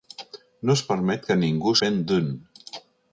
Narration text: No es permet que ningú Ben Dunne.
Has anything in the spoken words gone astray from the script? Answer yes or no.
no